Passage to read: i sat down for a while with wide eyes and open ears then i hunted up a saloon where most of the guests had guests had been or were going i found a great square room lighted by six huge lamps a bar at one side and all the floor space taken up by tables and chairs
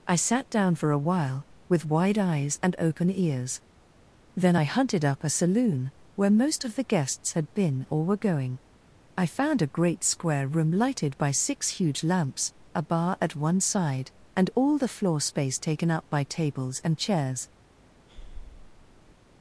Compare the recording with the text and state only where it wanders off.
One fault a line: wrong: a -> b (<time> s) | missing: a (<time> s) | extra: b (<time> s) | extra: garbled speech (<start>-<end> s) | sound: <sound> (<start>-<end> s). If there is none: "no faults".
missing: guests had (7.5 s)
sound: breath (18.1-19.2 s)